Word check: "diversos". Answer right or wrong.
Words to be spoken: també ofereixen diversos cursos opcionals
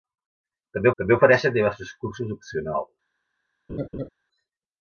right